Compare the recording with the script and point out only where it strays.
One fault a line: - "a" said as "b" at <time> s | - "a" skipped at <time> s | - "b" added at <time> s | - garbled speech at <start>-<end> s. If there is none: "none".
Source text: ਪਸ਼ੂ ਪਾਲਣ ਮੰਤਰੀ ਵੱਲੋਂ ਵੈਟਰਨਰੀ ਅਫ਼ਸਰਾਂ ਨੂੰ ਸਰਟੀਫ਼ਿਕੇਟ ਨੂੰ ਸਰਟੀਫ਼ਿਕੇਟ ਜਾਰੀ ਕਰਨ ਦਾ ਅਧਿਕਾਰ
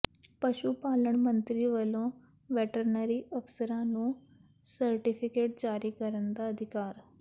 - "ਨੂੰ ਸਰਟੀਫ਼ਿਕੇਟ" skipped at 5.6 s